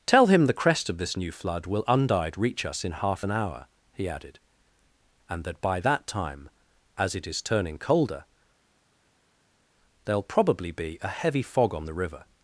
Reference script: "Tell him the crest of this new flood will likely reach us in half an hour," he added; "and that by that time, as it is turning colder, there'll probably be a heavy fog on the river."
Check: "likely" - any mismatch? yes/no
yes